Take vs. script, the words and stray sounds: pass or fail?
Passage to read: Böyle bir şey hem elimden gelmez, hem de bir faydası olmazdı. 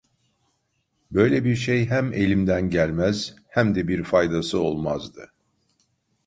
pass